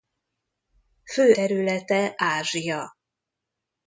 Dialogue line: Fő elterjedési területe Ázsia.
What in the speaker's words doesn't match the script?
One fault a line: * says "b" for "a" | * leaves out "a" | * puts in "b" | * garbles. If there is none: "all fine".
* leaves out "elterjedési"